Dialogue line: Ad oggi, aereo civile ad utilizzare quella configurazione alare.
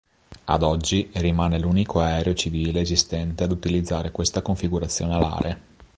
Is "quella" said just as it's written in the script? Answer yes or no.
no